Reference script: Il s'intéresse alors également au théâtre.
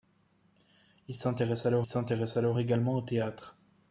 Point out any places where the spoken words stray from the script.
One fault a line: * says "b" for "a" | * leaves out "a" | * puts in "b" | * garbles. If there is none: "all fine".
* puts in "s'intéresse alors"